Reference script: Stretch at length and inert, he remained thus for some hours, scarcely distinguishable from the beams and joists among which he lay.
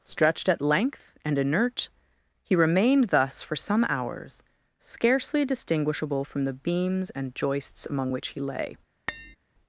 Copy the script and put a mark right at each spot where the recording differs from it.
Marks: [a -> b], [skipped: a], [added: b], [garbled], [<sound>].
[Stretch -> Stretched] at length and inert, he remained thus for some hours, scarcely distinguishable from the beams and joists among which he lay. [tap]